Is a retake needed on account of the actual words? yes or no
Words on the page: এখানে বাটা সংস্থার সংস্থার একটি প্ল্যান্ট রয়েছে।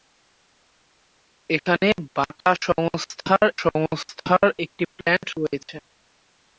no